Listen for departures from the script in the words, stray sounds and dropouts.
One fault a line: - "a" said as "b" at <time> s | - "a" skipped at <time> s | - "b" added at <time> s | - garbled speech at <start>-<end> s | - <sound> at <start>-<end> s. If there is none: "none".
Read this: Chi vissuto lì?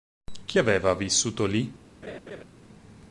- "aveva" added at 0.6 s
- laugh at 2.0-2.4 s